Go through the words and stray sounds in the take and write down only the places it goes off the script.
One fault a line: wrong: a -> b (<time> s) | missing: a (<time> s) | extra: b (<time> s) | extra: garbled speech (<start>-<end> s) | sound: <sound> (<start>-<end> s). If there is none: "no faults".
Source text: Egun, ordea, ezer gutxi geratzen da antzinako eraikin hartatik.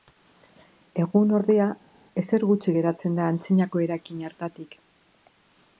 no faults